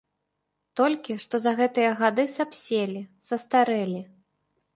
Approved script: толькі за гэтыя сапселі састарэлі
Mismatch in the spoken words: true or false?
true